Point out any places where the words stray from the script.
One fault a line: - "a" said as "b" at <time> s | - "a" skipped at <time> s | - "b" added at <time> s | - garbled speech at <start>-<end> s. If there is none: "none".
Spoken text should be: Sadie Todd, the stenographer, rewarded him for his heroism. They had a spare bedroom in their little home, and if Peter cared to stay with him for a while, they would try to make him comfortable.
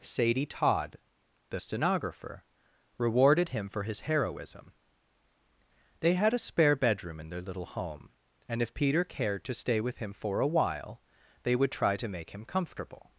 none